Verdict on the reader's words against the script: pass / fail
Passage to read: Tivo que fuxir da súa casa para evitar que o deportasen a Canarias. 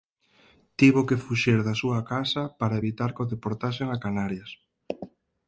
pass